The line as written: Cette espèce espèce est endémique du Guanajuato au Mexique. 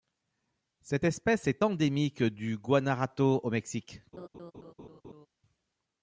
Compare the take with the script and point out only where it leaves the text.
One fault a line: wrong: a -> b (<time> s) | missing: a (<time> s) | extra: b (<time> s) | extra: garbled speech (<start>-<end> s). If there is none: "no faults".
missing: espèce (1.5 s)